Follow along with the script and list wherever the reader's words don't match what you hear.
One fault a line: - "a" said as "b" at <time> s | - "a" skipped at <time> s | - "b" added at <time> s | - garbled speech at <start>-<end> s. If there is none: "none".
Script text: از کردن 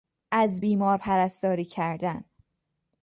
- "بیمار پرستاری" added at 0.6 s